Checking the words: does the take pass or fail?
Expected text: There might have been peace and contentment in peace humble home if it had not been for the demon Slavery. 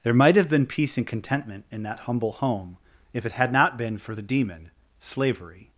fail